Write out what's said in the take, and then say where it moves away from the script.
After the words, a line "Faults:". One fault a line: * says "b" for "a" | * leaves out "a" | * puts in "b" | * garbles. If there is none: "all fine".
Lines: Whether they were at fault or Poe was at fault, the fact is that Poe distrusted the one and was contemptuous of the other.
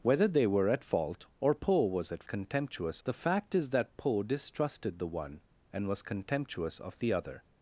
Whether they were at fault or Poe was at contemptuous, the fact is that Poe distrusted the one and was contemptuous of the other.
Faults:
* says "contemptuous" for "fault"